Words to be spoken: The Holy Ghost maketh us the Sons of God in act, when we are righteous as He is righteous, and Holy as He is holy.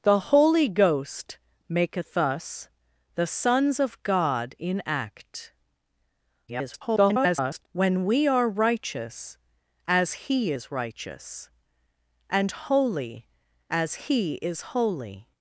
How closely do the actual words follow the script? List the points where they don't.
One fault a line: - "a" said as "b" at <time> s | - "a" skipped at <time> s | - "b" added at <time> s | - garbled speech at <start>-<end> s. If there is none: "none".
- garbled speech at 6.5-7.7 s